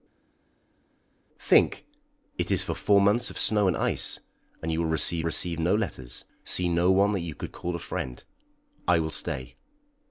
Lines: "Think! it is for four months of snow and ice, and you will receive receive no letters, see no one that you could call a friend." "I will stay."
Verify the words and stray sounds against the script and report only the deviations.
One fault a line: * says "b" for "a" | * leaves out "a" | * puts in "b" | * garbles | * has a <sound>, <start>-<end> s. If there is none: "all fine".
all fine